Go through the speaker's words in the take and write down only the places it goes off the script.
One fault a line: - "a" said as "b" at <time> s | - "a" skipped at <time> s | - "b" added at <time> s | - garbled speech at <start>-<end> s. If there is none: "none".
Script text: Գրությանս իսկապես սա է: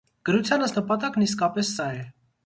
- "նպատակն" added at 0.7 s